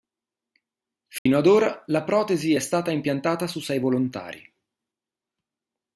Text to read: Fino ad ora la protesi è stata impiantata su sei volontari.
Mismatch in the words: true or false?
false